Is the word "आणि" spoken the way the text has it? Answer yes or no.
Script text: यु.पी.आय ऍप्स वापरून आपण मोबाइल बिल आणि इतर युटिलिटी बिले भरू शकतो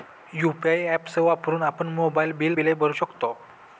no